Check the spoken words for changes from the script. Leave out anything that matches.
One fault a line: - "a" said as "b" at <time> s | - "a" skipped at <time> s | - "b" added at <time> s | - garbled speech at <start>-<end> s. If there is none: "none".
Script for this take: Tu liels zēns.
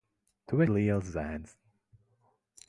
none